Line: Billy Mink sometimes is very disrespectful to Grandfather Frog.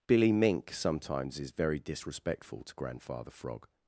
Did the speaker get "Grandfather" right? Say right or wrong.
right